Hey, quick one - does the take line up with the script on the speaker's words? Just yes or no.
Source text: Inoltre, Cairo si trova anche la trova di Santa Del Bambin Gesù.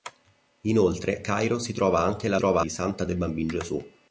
yes